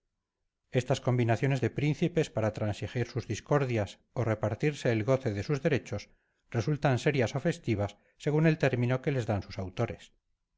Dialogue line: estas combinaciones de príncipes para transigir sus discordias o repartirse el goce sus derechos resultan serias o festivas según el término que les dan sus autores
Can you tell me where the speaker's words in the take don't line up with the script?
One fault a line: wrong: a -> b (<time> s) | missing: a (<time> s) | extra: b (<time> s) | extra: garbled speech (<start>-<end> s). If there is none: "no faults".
extra: de (5.3 s)